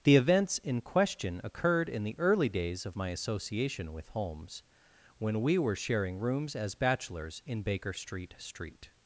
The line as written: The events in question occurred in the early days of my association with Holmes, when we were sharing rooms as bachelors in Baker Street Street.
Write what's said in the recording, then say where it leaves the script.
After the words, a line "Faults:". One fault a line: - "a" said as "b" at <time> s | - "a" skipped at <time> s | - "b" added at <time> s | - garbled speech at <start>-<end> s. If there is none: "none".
The events in question occurred in the early days of my association with Holmes, when we were sharing rooms as bachelors in Baker Street Street.
Faults:
none